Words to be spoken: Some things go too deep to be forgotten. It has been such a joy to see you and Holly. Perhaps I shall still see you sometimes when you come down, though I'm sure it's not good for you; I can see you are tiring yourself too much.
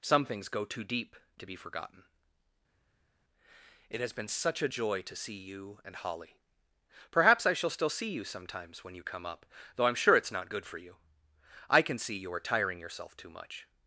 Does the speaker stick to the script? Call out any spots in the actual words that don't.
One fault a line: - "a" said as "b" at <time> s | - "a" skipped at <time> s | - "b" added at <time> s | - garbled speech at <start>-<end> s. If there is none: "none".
- "down" said as "up" at 9.2 s